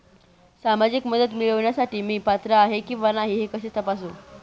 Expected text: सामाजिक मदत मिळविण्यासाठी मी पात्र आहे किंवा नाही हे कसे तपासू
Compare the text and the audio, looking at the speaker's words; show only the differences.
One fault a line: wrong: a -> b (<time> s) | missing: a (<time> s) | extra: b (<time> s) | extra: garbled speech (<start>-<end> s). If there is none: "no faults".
no faults